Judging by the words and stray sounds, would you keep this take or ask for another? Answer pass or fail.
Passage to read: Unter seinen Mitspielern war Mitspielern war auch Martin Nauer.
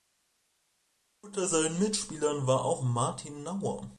fail